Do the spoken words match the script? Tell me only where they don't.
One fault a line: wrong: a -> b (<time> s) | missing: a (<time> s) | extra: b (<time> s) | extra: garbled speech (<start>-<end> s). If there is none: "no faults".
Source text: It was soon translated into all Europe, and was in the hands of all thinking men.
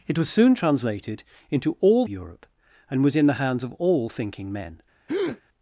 no faults